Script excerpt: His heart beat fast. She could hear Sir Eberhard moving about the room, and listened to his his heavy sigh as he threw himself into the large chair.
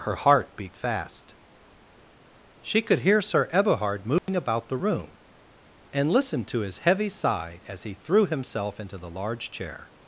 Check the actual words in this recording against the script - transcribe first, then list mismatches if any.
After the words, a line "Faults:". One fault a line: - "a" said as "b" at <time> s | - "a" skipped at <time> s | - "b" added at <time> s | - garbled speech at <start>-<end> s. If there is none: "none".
Her heart beat fast. She could hear Sir Eberhard moving about the room, and listened to his heavy sigh as he threw himself into the large chair.
Faults:
- "His" said as "Her" at 0.0 s
- "his" skipped at 6.8 s